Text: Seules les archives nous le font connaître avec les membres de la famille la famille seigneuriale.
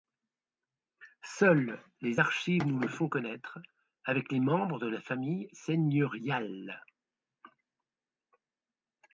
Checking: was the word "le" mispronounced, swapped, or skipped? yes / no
no